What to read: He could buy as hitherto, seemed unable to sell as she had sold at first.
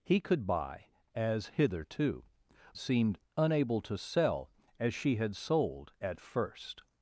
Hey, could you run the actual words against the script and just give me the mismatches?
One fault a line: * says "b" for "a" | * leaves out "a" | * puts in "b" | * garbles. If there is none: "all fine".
all fine